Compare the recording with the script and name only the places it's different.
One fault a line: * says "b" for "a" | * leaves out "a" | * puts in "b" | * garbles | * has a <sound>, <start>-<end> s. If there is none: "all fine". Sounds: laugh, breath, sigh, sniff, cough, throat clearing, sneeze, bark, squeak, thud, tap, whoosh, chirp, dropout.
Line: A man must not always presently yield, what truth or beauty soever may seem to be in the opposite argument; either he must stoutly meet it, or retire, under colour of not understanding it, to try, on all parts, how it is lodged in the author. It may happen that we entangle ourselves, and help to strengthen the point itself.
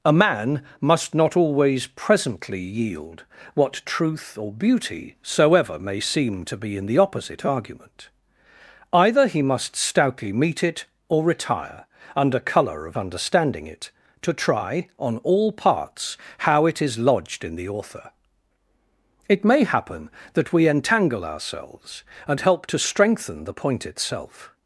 * leaves out "not"